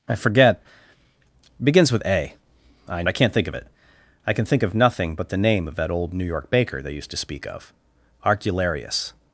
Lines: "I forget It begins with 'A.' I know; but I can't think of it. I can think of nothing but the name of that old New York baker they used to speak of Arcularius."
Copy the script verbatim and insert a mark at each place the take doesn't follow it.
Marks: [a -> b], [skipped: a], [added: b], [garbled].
"I forget It begins with 'A.' I [skipped: know; but] I can't think of it. I can think of nothing but the name of that old New York baker they used to speak of Arcularius."